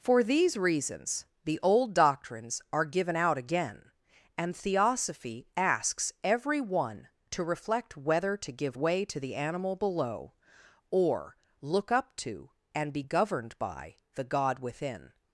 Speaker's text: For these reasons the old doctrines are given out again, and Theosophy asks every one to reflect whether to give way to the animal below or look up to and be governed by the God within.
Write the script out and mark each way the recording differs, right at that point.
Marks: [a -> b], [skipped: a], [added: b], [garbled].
For these reasons the old doctrines are given out again, and Theosophy asks every one to reflect whether to give way to the animal below or look up to and be governed by the God within.